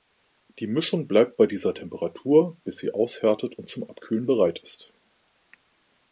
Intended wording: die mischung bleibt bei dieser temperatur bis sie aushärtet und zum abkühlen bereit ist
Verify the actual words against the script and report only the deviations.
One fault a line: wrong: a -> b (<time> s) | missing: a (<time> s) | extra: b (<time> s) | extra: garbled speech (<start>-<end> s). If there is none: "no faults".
no faults